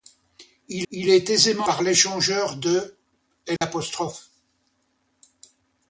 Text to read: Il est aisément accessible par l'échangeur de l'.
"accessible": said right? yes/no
no